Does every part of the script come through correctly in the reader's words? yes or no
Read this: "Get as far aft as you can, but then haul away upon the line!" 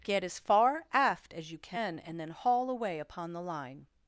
no